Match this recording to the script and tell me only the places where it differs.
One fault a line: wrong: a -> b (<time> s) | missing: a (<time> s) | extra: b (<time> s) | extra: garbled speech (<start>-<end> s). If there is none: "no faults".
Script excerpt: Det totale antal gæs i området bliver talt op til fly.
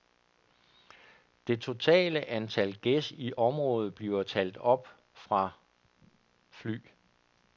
wrong: til -> fra (5.1 s)